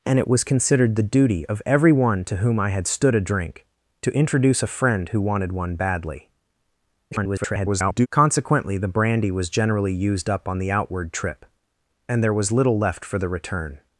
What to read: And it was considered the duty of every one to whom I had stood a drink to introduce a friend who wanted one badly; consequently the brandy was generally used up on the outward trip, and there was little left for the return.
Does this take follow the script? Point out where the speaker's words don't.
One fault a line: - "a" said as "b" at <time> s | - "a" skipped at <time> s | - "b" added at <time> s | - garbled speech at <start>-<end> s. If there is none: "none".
- garbled speech at 7.1-8.1 s